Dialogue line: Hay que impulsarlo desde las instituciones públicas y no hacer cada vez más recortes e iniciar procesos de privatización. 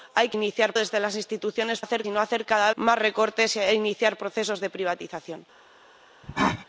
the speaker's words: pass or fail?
fail